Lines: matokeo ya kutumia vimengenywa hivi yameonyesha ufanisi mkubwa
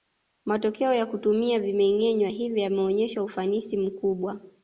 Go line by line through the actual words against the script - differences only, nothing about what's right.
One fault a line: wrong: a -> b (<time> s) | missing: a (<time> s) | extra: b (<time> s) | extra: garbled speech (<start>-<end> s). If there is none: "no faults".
no faults